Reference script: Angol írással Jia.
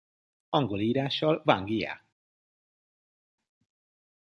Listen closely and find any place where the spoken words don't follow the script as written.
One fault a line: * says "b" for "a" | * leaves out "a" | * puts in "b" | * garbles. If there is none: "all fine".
* puts in "Wang"